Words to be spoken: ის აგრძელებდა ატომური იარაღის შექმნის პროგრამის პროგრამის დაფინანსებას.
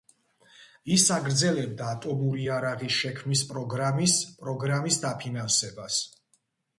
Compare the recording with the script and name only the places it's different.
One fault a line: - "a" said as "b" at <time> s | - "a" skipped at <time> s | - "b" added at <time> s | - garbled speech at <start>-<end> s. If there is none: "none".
none